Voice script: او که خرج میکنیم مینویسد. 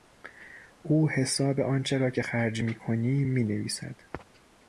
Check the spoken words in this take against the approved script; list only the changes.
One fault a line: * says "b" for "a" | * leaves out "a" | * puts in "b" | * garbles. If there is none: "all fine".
* puts in "حساب آنچه را"